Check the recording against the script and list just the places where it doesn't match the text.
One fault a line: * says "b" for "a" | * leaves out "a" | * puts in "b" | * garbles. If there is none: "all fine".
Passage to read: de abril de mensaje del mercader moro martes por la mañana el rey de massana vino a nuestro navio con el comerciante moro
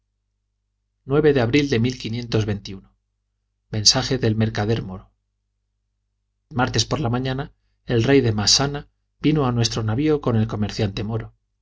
all fine